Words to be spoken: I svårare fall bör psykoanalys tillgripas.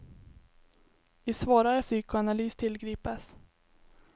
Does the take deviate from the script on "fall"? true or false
true